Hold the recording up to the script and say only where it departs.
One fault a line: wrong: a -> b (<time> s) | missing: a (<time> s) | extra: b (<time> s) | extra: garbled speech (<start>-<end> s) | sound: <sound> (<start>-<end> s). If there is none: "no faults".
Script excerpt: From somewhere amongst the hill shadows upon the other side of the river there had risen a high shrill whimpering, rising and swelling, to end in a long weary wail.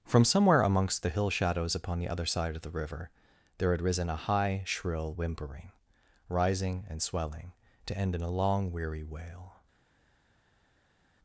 no faults